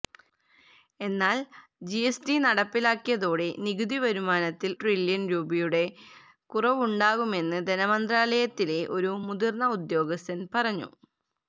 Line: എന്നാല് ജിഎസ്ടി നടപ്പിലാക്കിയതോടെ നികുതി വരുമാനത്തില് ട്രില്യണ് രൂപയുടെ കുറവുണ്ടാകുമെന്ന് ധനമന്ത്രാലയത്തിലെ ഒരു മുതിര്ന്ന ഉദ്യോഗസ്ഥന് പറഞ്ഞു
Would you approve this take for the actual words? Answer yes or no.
yes